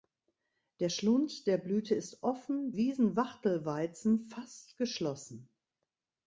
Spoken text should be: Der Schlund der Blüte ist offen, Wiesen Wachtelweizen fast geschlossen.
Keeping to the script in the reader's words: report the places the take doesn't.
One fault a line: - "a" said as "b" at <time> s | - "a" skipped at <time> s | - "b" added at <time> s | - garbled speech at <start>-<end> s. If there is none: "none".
none